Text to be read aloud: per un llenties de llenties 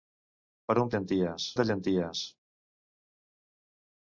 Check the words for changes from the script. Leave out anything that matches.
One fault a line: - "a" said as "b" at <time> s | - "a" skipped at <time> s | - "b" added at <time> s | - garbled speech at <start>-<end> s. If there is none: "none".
none